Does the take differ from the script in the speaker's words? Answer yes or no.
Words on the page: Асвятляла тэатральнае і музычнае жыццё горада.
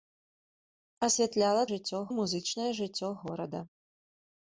yes